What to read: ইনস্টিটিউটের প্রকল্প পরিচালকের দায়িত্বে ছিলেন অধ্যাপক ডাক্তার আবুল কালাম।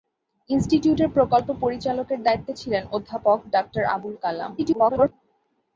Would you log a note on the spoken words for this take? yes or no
yes